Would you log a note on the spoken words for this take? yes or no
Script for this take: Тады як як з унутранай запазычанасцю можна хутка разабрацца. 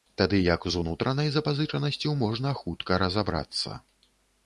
yes